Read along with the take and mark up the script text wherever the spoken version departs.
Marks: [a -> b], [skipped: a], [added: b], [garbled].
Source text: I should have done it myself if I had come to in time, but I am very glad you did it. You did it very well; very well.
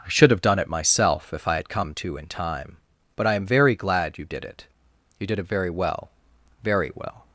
I should have done it myself if I had come to in time, but I am very glad you did it. You did it very well; very well.